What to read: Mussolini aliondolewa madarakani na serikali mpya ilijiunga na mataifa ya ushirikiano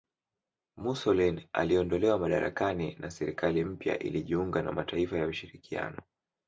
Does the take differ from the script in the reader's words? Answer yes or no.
no